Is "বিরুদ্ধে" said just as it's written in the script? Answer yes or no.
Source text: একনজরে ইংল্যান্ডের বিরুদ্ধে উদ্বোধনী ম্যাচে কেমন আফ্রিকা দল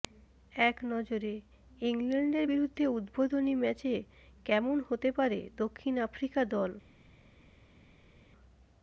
yes